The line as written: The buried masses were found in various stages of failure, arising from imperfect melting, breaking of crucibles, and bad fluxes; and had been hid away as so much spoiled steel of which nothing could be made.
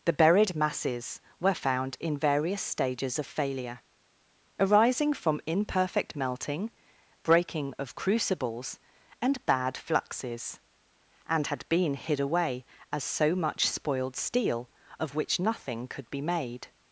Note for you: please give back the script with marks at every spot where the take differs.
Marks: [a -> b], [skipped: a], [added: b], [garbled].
The buried masses were found in various stages of failure, arising from imperfect melting, breaking of crucibles, and bad fluxes; and had been hid away as so much spoiled steel of which nothing could be made.